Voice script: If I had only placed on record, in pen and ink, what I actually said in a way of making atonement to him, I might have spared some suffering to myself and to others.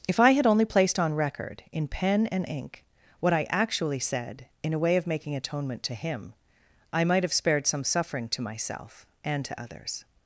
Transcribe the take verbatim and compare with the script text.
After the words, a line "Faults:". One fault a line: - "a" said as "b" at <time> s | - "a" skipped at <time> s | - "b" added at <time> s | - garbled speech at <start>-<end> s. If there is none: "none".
If I had only placed on record, in pen and ink, what I actually said in a way of making atonement to him, I might have spared some suffering to myself and to others.
Faults:
none